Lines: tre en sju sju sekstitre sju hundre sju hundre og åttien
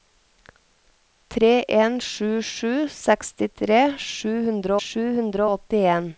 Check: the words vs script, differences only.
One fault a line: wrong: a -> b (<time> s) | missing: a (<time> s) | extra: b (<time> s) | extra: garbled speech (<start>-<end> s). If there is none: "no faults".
no faults